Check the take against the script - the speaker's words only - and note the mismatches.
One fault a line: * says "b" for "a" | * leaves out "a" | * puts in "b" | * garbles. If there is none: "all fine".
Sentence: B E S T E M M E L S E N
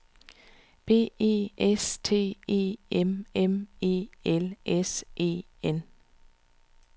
all fine